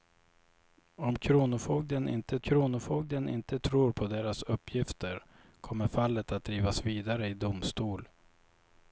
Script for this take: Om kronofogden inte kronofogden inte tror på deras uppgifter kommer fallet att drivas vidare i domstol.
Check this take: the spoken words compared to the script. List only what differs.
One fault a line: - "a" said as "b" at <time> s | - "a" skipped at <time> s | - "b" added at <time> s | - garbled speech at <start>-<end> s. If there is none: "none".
none